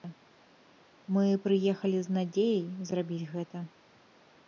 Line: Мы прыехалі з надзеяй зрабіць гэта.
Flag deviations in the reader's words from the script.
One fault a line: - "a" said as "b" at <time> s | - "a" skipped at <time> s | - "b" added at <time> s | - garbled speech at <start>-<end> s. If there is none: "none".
none